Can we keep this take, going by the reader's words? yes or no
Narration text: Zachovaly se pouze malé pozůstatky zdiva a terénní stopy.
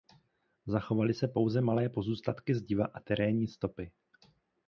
yes